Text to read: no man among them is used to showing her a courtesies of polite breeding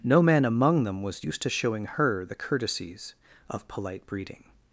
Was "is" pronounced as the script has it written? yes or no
no